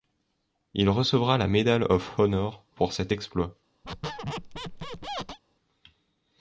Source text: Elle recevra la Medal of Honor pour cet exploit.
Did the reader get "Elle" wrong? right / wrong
wrong